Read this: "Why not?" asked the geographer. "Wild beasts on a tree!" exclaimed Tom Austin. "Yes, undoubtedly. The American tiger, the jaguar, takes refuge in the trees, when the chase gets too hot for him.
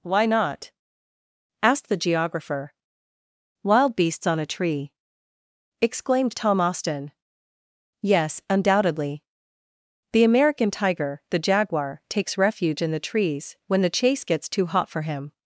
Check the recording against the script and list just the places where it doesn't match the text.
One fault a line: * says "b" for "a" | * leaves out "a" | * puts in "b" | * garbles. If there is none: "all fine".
all fine